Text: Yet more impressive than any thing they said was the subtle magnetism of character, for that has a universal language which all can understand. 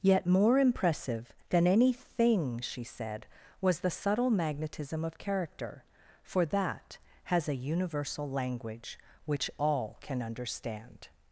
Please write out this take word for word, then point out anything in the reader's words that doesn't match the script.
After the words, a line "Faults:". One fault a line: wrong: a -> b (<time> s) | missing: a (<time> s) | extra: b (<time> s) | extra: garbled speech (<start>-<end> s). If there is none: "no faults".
Yet more impressive than any thing she said was the subtle magnetism of character, for that has a universal language which all can understand.
Faults:
wrong: they -> she (2.6 s)